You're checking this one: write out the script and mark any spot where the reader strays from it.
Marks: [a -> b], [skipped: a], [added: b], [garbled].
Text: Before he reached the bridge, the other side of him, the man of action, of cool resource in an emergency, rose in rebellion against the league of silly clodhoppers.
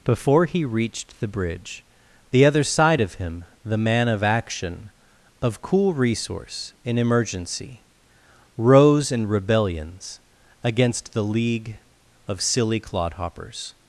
Before he reached the bridge, the other side of him, the man of action, of cool resource in [skipped: an] emergency, rose in [rebellion -> rebellions] against the league of silly clodhoppers.